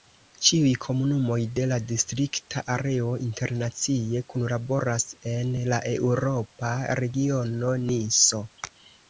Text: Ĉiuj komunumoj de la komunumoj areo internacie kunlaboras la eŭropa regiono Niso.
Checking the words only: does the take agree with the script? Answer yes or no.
no